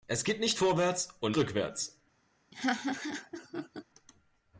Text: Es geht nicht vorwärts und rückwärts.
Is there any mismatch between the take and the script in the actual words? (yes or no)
no